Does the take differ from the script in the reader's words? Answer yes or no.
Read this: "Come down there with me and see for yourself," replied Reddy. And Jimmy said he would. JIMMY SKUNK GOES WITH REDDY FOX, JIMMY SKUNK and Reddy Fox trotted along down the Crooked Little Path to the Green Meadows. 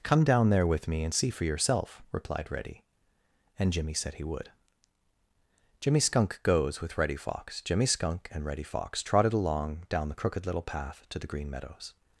no